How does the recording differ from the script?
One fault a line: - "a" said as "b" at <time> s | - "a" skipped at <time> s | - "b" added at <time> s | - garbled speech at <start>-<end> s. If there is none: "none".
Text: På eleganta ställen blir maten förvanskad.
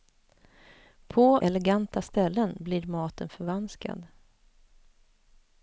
none